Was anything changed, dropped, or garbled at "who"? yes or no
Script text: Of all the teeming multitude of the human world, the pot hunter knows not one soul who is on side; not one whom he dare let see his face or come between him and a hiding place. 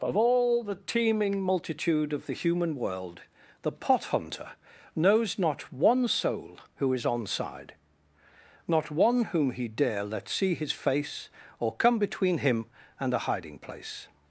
no